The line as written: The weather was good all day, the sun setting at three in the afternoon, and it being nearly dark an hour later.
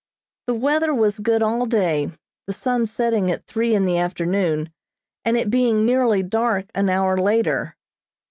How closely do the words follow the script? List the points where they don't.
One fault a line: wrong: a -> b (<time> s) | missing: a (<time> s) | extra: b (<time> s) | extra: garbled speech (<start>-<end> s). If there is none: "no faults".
no faults